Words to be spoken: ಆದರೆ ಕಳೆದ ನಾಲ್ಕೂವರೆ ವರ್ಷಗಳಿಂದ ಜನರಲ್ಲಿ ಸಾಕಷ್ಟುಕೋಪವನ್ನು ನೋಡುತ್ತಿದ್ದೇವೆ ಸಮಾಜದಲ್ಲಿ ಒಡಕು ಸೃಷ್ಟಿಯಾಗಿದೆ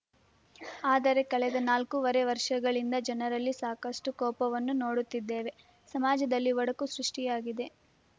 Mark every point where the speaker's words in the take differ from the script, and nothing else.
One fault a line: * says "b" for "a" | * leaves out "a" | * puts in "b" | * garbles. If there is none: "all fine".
all fine